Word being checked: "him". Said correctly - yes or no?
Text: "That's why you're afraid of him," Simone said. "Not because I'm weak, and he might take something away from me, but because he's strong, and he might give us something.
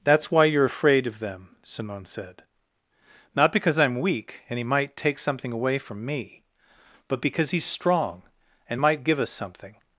no